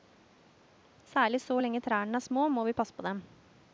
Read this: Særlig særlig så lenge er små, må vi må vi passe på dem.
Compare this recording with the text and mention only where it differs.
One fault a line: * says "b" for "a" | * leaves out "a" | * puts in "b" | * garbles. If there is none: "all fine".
* leaves out "særlig"
* puts in "trærne"
* leaves out "må vi"